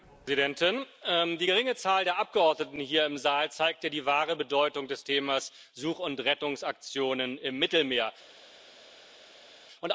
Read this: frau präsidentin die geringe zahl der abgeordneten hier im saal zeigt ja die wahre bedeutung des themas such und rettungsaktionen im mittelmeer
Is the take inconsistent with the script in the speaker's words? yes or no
no